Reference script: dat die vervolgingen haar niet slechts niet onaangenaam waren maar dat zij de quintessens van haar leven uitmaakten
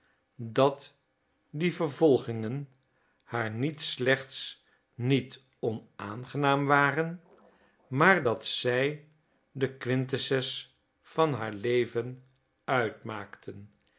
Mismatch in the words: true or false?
false